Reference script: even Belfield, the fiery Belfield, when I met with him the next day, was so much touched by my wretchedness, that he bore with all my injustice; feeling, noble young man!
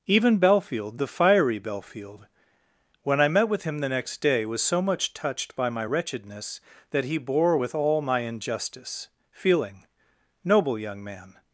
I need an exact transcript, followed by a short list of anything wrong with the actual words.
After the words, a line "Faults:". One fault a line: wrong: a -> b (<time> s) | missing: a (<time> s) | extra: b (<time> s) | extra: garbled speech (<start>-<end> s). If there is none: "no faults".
even Belfield, the fiery Belfield, when I met with him the next day, was so much touched by my wretchedness, that he bore with all my injustice; feeling, noble young man!
Faults:
no faults